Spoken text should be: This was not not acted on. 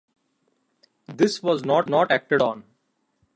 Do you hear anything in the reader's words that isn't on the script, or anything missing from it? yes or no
no